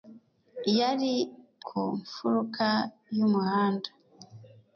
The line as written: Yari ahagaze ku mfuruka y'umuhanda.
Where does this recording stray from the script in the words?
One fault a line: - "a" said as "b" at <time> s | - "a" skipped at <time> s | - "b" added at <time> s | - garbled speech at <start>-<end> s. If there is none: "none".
- "ahagaze" skipped at 1.1 s